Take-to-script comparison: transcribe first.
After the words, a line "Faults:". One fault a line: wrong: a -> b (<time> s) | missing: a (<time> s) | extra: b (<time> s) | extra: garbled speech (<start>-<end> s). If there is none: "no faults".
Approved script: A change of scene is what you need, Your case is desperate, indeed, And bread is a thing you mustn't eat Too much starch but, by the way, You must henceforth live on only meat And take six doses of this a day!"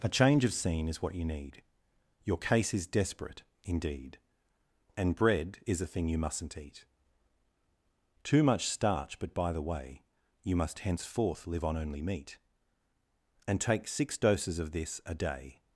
A change of scene is what you need, Your case is desperate, indeed, And bread is a thing you mustn't eat Too much starch but, by the way, You must henceforth live on only meat And take six doses of this a day!"
Faults:
no faults